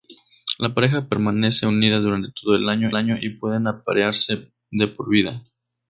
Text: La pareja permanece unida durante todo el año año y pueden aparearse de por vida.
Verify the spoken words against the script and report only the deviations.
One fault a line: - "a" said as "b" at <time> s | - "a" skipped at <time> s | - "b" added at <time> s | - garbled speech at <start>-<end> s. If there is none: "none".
none